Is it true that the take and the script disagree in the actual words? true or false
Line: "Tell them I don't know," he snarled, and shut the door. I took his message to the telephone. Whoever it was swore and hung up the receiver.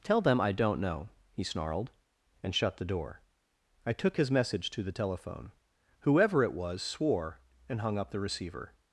false